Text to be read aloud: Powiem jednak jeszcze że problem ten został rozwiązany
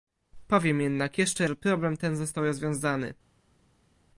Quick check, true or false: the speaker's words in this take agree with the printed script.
true